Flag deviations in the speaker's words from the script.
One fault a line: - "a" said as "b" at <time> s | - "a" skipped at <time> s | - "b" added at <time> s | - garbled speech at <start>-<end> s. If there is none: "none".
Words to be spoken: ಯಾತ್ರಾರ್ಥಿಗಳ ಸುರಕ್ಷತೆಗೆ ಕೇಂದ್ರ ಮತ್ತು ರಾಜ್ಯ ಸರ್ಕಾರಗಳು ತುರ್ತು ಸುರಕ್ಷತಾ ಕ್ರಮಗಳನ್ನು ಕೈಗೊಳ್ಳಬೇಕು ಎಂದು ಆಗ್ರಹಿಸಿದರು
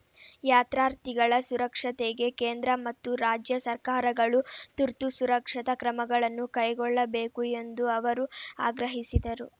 - "ಅವರು" added at 8.0 s